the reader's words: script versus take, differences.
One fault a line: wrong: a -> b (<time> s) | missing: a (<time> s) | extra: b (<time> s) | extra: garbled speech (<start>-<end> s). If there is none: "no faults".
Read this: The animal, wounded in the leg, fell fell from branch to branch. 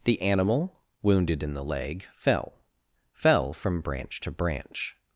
no faults